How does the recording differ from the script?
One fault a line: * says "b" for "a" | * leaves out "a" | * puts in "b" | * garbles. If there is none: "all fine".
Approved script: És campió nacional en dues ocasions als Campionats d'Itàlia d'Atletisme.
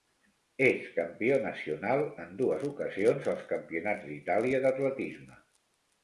all fine